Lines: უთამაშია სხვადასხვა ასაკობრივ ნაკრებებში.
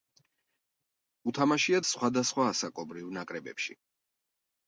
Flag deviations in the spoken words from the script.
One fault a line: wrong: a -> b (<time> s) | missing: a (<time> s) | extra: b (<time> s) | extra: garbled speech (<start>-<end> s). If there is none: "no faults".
no faults